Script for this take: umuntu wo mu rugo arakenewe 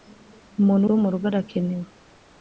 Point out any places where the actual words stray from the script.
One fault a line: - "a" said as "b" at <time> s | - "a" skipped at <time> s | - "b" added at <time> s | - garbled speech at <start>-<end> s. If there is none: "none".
none